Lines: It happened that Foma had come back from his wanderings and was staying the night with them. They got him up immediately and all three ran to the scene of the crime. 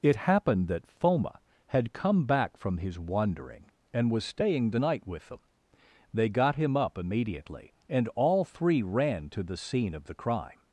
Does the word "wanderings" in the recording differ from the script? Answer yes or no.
yes